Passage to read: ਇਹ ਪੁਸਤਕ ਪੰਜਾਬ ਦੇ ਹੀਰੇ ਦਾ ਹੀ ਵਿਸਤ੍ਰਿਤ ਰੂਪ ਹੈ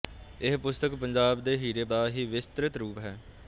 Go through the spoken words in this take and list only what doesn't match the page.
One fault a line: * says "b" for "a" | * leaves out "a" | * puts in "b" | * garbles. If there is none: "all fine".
all fine